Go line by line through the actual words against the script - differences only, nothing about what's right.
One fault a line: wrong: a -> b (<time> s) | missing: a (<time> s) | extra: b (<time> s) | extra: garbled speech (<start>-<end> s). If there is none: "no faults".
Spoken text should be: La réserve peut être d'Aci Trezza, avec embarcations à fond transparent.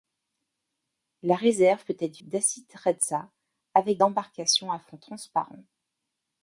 no faults